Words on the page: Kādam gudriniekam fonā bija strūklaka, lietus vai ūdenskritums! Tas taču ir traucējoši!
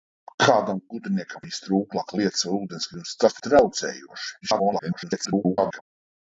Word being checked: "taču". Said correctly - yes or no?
no